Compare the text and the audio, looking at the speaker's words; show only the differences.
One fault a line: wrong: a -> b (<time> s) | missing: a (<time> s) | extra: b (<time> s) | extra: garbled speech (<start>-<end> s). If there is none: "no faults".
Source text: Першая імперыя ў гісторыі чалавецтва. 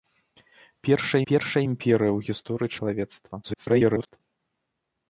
extra: першая (1.3 s)
extra: garbled speech (3.4-4.2 s)